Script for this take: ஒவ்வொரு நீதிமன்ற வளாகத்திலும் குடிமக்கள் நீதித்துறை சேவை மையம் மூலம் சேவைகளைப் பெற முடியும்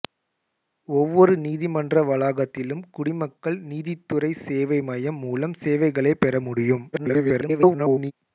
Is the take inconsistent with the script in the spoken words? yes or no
yes